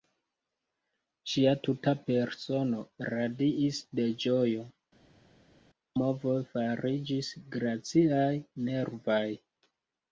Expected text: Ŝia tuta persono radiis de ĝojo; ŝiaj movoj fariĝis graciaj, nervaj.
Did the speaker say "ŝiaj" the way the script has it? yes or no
no